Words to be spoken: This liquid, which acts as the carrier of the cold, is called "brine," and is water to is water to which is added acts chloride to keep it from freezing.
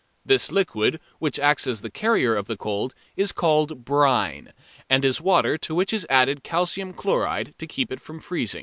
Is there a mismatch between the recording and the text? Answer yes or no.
yes